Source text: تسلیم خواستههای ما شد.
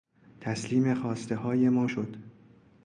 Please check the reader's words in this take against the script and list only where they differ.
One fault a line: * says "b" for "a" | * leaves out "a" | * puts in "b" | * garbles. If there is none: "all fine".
all fine